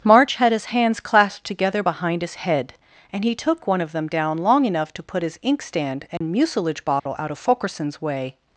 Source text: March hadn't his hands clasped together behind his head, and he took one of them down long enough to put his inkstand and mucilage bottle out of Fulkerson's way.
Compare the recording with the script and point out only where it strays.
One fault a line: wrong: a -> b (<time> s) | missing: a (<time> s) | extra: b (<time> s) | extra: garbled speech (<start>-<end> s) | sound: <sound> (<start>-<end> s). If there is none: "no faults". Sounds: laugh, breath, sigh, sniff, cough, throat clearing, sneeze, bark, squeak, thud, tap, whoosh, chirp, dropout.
wrong: hadn't -> had (0.4 s)
sound: dropout (6.2-6.2 s)
sound: dropout (7.0-7.1 s)